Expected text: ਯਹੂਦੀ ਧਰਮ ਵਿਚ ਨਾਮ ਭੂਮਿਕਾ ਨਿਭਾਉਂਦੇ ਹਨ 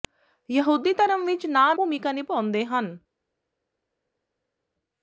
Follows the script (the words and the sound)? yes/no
yes